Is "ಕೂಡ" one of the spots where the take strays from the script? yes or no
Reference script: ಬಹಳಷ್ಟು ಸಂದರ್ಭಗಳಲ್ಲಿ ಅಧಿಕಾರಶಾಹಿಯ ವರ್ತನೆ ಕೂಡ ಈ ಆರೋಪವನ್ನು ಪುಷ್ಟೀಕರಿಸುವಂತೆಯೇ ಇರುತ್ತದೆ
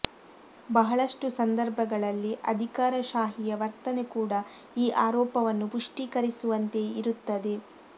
no